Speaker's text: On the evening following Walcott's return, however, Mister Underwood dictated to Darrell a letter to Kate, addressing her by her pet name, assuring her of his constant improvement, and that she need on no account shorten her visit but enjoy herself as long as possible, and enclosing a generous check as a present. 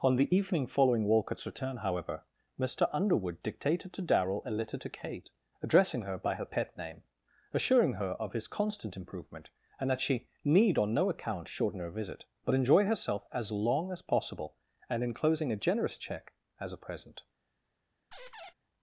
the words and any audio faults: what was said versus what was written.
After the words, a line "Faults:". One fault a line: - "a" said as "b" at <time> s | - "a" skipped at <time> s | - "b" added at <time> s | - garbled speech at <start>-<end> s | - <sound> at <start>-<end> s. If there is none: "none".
On the evening following Walcott's return, however, Mister Underwood dictated to Darrell a letter to Kate, addressing her by her pet name, assuring her of his constant improvement, and that she need on no account shorten her visit but enjoy herself as long as possible, and enclosing a generous check as a present.
Faults:
- squeak at 18.1-18.5 s